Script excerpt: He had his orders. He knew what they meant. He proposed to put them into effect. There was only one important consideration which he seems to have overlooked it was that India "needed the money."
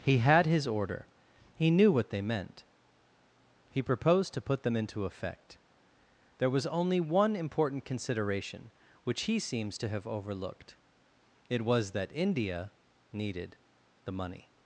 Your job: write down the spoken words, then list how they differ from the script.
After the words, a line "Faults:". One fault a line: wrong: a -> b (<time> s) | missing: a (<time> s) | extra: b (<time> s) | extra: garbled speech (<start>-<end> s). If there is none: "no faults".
He had his order. He knew what they meant. He proposed to put them into effect. There was only one important consideration which he seems to have overlooked it was that India "needed the money."
Faults:
wrong: orders -> order (0.7 s)